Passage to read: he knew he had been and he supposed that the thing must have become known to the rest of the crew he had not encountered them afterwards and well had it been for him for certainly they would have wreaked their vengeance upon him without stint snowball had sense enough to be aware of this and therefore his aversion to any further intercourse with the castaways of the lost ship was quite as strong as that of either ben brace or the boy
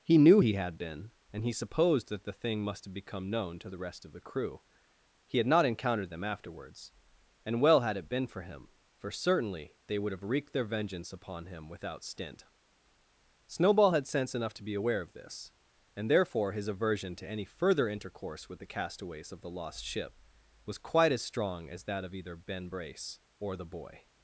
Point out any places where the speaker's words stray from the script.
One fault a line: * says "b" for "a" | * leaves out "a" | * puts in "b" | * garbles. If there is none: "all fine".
all fine